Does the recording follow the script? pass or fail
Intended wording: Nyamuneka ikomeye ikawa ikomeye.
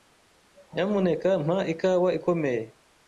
fail